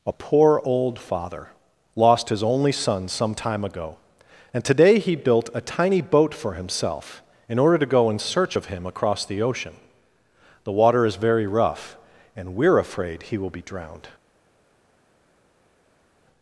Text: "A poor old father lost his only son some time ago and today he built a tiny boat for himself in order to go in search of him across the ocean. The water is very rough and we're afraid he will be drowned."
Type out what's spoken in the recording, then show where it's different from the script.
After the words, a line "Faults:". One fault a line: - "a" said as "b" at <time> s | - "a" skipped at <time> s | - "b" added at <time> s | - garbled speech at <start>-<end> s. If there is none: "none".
"A poor old father lost his only son some time ago and today he built a tiny boat for himself in order to go in search of him across the ocean. The water is very rough and we're afraid he will be drowned."
Faults:
none